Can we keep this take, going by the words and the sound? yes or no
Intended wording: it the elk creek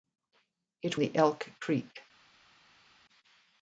yes